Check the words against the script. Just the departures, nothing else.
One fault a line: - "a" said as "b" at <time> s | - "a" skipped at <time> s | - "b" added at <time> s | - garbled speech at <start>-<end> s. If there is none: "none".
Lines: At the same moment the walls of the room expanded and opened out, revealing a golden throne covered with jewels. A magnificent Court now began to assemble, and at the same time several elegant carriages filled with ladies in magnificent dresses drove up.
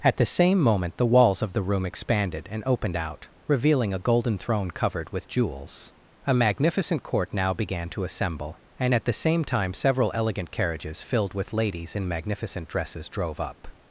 none